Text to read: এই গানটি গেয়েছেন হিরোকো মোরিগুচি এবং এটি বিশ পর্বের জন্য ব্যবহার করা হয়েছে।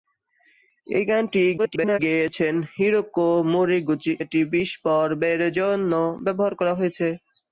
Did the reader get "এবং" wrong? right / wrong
wrong